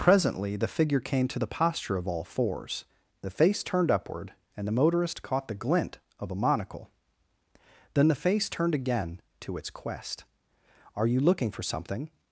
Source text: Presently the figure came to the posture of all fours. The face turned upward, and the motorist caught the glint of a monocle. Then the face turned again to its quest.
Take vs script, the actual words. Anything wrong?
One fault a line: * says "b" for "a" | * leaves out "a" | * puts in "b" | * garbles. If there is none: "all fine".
* puts in "Are you looking for something"